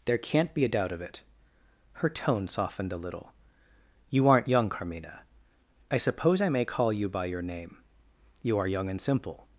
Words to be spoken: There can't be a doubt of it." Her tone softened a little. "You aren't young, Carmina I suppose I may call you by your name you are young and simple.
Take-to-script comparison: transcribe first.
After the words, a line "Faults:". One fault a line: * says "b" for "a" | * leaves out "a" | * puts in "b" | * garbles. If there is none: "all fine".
There can't be a doubt of it." Her tone softened a little. "You aren't young, Carmina I suppose I may call you by your name you are young and simple.
Faults:
all fine